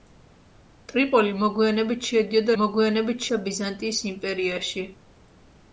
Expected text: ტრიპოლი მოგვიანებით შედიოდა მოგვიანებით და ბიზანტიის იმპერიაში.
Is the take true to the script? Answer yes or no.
yes